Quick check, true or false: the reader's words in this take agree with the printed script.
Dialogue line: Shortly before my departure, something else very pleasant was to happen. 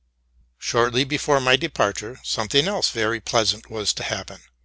true